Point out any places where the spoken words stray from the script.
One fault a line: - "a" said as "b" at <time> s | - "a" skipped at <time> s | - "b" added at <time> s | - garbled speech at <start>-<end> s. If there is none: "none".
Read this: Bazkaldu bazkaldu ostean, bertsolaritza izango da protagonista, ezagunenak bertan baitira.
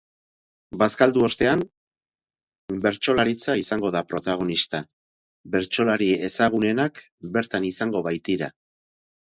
- "bazkaldu" skipped at 1.2 s
- "bertsolari" added at 5.6 s
- "izango" added at 7.8 s